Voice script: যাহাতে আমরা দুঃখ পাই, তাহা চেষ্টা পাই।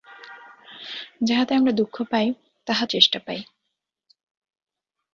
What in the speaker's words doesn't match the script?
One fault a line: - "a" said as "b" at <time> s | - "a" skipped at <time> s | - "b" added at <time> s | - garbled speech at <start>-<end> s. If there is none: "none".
none